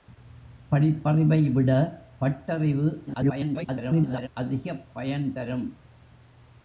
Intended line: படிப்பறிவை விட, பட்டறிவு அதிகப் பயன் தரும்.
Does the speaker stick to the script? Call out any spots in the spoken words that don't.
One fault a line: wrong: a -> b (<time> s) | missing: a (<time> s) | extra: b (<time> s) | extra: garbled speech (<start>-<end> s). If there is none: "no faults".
extra: garbled speech (3.1-4.3 s)